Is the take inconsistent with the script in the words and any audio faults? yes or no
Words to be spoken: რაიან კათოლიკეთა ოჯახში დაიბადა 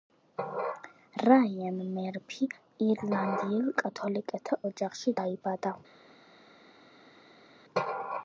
yes